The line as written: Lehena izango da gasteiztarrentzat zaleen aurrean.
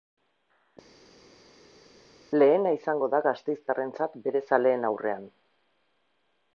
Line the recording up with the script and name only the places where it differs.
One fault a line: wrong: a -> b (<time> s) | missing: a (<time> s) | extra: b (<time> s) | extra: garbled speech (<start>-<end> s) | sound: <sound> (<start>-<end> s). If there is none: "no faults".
extra: bere (4.3 s)